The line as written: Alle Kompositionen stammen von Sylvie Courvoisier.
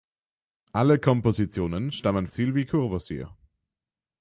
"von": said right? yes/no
no